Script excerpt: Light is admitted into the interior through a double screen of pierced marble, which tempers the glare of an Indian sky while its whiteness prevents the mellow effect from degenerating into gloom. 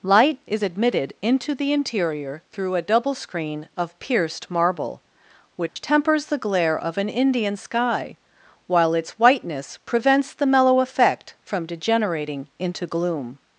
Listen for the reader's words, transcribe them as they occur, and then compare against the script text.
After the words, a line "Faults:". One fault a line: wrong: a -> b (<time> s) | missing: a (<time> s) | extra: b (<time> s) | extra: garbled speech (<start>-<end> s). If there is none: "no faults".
Light is admitted into the interior through a double screen of pierced marble, which tempers the glare of an Indian sky while its whiteness prevents the mellow effect from degenerating into gloom.
Faults:
no faults